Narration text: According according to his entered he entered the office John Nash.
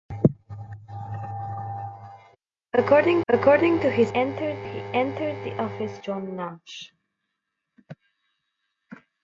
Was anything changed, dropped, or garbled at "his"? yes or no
no